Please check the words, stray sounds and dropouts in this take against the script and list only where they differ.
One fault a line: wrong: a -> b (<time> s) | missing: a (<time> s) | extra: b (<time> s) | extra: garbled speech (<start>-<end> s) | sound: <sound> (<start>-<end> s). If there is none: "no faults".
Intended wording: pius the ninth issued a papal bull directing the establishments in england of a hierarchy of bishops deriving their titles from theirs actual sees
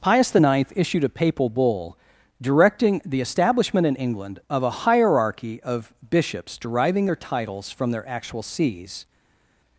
wrong: establishments -> establishment (3.2 s)
wrong: theirs -> their (7.9 s)